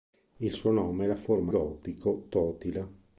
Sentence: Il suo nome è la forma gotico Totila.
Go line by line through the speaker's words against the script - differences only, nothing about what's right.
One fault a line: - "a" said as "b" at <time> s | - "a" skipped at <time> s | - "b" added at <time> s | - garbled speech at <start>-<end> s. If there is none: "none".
none